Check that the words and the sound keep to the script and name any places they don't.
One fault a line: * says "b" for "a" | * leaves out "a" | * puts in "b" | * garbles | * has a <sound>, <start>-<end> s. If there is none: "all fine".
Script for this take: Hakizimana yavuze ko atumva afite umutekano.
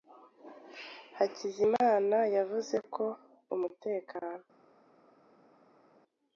* leaves out "atumva afite"